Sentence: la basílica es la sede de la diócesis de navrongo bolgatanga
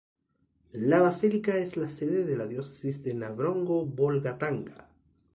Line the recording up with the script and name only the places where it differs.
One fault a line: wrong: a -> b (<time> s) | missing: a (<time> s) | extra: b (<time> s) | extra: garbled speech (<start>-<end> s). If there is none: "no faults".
no faults